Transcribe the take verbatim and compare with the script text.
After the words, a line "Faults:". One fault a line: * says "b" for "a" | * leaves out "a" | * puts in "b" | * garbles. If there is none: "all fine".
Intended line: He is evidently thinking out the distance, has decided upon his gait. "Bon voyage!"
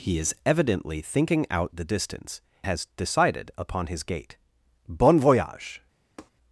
He is evidently thinking out the distance, has decided upon his gait. "Bon voyage!"
Faults:
all fine